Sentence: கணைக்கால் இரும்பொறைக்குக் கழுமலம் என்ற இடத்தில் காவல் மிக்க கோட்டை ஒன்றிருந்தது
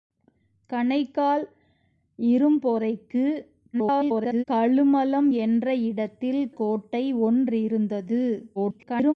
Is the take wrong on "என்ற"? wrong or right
right